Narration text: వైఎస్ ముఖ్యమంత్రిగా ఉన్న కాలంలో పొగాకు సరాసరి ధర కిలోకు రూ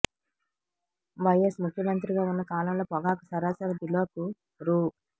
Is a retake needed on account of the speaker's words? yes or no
yes